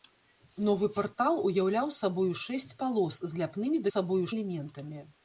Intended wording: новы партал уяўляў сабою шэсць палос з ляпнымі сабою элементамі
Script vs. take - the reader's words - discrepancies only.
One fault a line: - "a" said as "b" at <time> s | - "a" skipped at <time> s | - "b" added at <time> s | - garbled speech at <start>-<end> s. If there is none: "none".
none